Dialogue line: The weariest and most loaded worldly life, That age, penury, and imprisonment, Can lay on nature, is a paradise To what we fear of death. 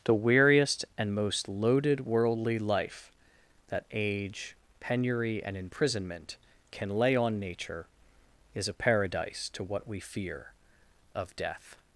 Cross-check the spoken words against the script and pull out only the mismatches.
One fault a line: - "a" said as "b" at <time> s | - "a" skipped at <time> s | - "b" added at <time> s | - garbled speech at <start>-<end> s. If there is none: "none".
none